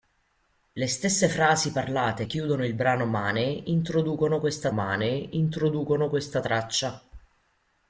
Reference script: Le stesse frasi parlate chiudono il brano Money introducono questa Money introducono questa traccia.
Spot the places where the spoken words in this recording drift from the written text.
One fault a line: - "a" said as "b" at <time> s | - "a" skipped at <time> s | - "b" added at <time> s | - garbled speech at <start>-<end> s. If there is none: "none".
none